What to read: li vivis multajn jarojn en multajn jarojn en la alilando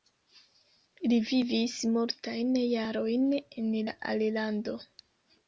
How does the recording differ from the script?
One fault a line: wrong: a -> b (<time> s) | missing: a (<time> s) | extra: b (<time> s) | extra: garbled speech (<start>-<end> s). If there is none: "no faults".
missing: multajn jarojn en (3.7 s)